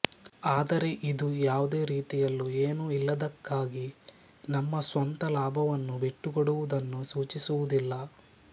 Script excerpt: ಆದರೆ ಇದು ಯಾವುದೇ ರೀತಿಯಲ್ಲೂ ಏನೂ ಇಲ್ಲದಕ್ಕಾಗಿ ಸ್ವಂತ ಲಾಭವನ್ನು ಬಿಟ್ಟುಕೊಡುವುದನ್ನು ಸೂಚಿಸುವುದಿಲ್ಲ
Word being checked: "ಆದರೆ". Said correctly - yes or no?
yes